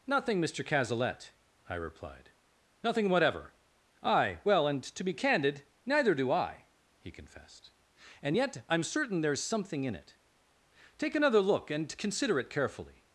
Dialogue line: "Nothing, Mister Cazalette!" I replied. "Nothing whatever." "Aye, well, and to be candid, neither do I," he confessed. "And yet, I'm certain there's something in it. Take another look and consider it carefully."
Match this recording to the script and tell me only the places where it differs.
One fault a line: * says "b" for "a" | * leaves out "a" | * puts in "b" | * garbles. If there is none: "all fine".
all fine